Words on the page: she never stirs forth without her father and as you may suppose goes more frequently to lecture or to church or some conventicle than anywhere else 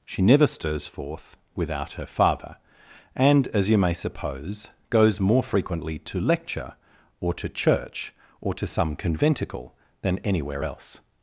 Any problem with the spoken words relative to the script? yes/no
yes